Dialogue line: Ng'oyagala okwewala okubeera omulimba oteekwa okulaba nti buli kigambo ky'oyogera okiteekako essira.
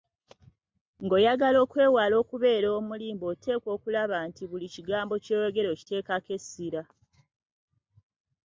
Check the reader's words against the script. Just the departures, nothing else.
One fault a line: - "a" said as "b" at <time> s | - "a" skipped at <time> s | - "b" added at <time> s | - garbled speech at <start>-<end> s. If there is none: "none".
none